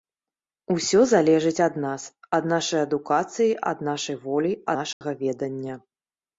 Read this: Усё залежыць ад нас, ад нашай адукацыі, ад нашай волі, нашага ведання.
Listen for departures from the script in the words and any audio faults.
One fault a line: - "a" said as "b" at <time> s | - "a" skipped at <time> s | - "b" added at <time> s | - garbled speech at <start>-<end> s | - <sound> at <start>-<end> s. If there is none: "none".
- dropout at 4.9-5.0 s